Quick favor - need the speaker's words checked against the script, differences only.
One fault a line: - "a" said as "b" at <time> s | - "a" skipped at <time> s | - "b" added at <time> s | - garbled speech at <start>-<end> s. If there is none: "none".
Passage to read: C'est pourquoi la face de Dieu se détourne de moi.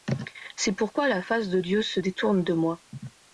none